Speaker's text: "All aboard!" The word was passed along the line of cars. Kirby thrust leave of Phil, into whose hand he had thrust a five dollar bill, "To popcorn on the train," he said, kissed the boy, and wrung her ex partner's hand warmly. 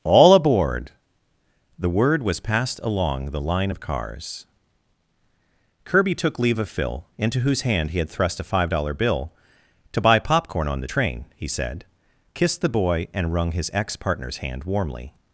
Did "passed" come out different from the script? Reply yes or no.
no